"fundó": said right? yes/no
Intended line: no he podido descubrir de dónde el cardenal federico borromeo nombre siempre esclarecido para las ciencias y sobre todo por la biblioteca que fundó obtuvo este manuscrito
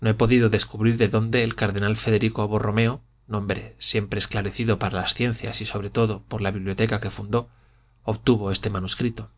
yes